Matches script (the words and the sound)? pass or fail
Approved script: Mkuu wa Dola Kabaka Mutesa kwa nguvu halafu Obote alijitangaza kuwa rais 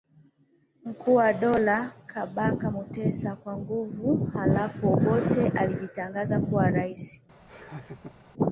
fail